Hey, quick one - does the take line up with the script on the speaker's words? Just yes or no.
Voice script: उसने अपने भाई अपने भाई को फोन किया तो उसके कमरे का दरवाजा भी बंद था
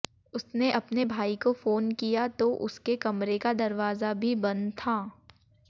no